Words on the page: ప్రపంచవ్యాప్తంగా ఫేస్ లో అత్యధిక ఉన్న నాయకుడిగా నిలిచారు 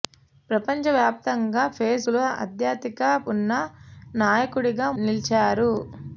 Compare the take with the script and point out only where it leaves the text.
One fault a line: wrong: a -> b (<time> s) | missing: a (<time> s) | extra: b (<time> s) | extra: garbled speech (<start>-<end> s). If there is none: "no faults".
no faults